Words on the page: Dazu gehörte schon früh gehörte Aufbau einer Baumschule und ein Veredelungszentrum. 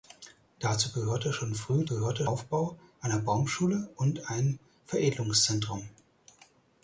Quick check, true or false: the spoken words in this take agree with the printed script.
true